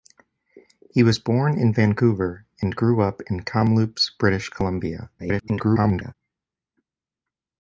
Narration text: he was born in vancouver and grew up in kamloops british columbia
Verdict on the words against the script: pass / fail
fail